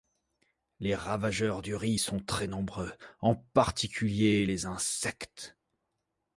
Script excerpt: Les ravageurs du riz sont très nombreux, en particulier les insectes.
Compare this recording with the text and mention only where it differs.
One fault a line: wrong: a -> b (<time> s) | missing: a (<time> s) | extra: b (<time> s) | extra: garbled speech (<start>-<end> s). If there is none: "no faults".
no faults